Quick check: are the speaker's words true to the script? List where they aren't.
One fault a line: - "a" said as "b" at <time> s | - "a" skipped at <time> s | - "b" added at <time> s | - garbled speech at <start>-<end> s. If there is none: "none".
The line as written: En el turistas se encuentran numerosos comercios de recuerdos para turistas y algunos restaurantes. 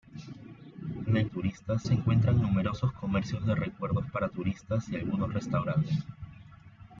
none